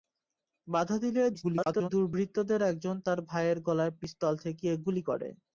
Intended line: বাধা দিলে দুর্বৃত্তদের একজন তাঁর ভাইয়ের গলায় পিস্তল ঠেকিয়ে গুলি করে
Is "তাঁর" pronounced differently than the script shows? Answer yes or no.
no